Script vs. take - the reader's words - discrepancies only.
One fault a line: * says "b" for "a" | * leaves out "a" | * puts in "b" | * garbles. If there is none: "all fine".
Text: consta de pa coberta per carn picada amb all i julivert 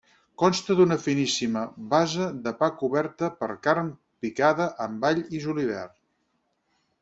* puts in "d'una finíssima base"